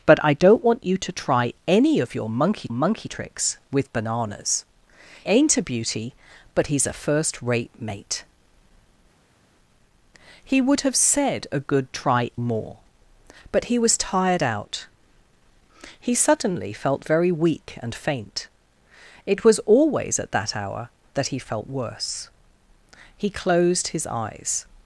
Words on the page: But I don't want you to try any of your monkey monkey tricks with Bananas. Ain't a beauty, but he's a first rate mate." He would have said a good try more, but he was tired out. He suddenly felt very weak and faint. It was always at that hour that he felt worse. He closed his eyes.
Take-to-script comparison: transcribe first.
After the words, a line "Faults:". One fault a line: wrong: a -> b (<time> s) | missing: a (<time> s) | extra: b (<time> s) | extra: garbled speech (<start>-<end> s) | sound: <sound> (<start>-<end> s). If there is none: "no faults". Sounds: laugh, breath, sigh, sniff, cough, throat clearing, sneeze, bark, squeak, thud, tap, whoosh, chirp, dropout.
But I don't want you to try any of your monkey monkey tricks with Bananas. Ain't a beauty, but he's a first rate mate." He would have said a good try more, but he was tired out. He suddenly felt very weak and faint. It was always at that hour that he felt worse. He closed his eyes.
Faults:
no faults